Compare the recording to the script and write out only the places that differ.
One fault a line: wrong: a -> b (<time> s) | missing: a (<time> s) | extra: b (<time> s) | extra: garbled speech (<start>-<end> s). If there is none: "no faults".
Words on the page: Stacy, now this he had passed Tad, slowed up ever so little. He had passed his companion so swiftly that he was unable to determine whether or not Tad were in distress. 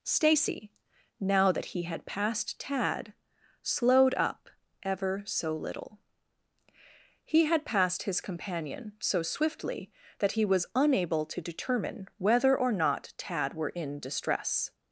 wrong: this -> that (1.5 s)